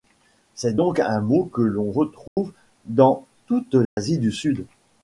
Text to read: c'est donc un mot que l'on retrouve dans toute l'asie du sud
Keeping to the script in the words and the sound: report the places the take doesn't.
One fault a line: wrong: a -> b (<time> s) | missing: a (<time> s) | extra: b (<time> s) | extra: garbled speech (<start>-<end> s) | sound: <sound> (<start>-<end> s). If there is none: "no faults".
sound: dropout (2.3-2.4 s)
sound: dropout (3.8-4.0 s)